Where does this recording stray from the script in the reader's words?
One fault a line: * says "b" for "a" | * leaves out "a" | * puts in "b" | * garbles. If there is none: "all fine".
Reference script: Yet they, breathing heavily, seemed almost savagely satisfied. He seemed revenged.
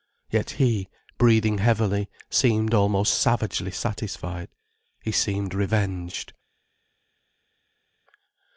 * says "he" for "they"